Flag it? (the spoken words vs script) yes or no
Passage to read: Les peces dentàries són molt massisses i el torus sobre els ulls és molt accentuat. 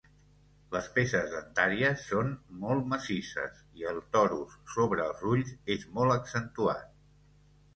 no